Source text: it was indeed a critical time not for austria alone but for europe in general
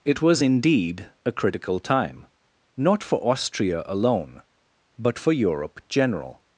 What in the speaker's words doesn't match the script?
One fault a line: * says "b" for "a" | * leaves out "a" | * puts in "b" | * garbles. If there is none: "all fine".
* leaves out "in"